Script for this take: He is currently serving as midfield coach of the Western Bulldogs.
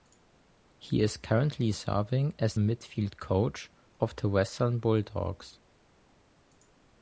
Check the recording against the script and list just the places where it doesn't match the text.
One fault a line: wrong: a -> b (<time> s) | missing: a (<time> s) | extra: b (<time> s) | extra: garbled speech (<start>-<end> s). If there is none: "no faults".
no faults